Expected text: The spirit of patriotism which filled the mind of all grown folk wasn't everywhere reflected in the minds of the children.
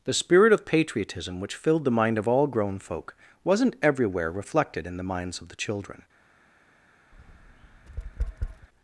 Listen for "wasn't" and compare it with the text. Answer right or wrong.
right